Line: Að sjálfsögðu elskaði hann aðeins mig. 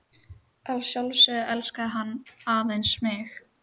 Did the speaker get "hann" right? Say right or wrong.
right